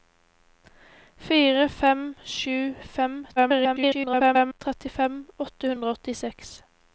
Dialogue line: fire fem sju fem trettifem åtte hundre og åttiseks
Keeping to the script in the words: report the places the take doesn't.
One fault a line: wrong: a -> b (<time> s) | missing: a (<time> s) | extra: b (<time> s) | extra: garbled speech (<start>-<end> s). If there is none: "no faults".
extra: garbled speech (3.4-4.6 s)